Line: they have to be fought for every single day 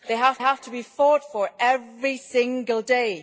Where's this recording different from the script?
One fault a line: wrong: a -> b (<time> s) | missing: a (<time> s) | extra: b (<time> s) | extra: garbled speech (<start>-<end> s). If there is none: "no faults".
extra: have (0.4 s)